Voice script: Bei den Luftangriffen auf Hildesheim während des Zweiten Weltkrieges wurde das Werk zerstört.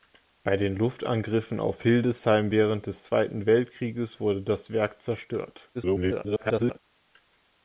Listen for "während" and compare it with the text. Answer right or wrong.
right